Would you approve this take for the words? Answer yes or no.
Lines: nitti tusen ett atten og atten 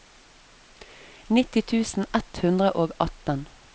no